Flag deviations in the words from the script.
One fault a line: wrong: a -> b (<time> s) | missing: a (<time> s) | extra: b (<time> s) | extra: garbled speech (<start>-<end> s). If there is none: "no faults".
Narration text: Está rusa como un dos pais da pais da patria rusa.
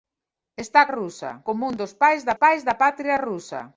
no faults